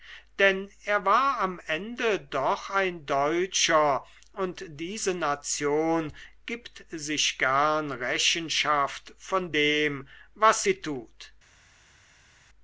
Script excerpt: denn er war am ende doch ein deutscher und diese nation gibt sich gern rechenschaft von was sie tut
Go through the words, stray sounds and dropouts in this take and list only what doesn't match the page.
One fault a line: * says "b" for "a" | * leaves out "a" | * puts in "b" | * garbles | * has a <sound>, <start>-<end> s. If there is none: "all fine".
* puts in "dem"